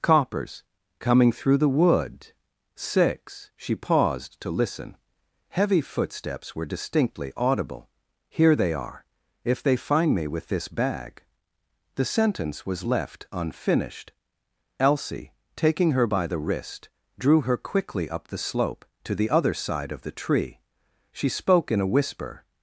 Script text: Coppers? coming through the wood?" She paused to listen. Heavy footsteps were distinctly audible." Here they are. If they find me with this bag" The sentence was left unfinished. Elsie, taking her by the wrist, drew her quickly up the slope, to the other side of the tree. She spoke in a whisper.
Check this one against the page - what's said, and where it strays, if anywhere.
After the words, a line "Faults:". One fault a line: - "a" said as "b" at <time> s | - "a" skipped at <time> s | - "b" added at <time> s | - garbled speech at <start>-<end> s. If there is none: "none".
Coppers? coming through the wood?" six She paused to listen. Heavy footsteps were distinctly audible." Here they are. If they find me with this bag" The sentence was left unfinished. Elsie, taking her by the wrist, drew her quickly up the slope, to the other side of the tree. She spoke in a whisper.
Faults:
- "six" added at 2.8 s